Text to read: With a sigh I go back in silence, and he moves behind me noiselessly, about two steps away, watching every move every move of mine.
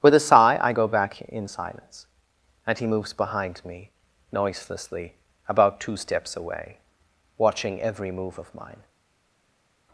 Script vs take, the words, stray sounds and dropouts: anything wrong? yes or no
yes